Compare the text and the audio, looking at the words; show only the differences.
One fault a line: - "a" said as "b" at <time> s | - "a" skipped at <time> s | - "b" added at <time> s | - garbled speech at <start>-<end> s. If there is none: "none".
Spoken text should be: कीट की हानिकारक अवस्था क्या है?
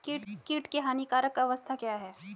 none